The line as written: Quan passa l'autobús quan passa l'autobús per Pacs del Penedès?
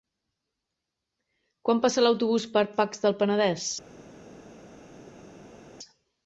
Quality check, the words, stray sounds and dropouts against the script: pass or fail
fail